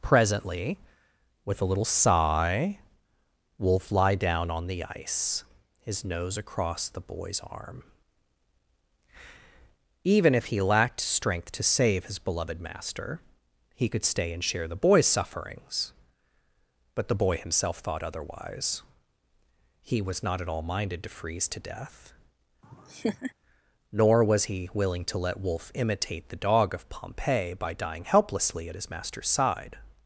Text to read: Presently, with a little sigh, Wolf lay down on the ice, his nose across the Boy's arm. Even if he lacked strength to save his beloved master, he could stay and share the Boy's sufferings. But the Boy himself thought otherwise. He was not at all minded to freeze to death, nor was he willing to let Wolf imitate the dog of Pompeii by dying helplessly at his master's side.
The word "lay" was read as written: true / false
false